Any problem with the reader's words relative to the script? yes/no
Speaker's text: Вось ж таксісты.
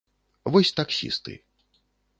no